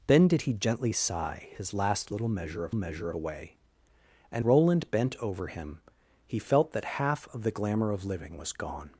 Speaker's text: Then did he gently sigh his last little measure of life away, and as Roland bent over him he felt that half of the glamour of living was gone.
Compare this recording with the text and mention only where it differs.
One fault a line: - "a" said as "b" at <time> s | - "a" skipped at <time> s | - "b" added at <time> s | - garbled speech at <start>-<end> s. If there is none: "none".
- "life" said as "measure" at 2.7 s
- "as" skipped at 4.4 s